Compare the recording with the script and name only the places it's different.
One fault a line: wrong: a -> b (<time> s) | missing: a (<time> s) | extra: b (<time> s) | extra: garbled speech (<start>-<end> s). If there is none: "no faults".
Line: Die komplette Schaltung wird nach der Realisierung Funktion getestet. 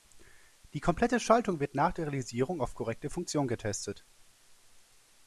extra: auf korrekte (2.6 s)